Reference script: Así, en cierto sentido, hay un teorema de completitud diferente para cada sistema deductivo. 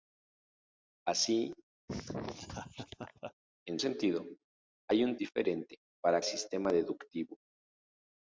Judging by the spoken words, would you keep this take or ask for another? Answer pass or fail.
fail